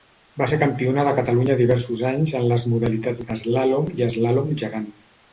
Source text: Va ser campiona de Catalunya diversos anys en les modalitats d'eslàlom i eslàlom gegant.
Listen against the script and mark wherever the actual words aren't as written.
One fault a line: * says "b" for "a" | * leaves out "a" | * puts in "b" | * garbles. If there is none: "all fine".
all fine